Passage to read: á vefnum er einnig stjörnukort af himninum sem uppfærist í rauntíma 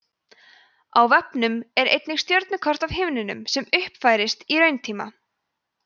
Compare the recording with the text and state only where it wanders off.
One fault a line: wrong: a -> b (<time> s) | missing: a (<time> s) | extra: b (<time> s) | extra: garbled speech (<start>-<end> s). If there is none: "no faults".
no faults